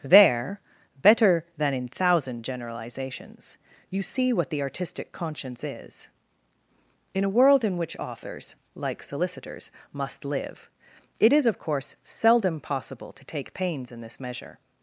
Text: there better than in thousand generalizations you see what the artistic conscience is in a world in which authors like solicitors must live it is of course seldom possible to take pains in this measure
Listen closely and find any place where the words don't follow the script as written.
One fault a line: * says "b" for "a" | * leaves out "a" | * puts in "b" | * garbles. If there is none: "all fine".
all fine